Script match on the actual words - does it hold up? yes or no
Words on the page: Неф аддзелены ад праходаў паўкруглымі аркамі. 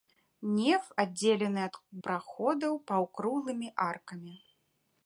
yes